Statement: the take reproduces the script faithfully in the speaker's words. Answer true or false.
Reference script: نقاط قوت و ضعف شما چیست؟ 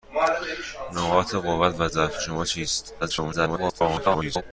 false